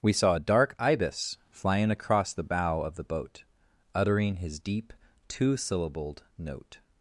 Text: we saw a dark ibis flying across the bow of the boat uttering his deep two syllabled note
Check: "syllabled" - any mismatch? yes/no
no